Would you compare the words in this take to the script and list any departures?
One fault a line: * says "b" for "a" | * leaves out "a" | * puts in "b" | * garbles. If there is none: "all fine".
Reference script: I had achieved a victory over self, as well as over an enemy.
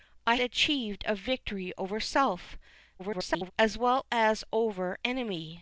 * leaves out "had"
* garbles
* leaves out "an"